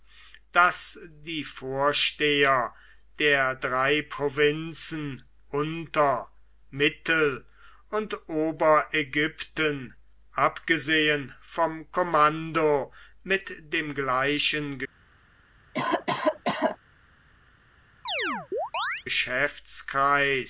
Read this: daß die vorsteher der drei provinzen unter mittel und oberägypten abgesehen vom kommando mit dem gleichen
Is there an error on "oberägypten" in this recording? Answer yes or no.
no